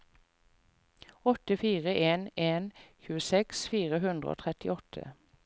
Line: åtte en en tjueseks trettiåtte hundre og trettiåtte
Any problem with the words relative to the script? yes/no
yes